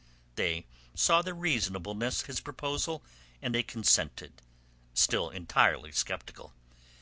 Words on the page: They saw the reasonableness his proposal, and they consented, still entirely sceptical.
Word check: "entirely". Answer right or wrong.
right